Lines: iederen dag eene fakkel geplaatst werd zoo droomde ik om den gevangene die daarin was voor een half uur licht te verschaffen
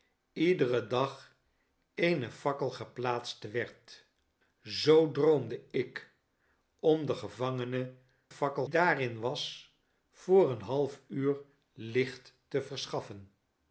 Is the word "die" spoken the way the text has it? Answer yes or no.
no